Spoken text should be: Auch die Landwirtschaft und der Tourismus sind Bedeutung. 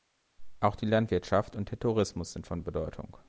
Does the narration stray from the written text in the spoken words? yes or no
yes